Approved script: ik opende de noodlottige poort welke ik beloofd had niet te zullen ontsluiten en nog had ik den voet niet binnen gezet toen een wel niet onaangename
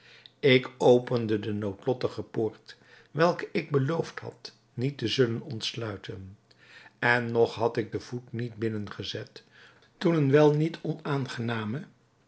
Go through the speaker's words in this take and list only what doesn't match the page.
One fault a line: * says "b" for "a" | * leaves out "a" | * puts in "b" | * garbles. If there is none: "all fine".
all fine